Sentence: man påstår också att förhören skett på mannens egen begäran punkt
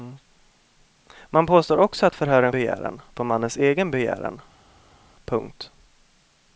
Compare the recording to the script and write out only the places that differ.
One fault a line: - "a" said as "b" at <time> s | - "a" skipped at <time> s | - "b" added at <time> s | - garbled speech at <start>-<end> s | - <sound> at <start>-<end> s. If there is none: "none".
- "skett" said as "begäran" at 2.5 s